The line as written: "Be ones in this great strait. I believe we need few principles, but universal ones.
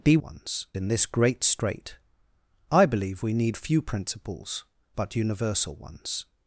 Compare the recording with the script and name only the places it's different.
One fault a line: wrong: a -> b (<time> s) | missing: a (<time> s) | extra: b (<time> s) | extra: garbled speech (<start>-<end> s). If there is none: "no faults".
no faults